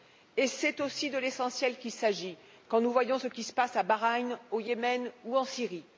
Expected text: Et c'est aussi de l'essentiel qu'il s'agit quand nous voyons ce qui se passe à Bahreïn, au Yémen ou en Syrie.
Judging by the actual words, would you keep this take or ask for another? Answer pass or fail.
pass